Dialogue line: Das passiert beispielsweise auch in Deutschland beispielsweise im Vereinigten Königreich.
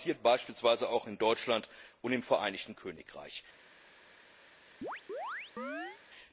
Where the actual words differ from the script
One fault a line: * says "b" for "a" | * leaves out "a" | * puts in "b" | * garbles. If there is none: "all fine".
* says "und" for "beispielsweise"